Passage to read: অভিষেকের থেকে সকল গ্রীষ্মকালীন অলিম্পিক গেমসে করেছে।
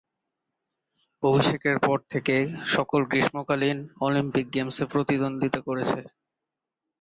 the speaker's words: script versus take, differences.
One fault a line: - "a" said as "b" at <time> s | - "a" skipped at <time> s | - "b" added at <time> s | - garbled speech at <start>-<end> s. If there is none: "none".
- "পর" added at 1.8 s
- "প্রতিদ্বন্দ্বিতা" added at 4.9 s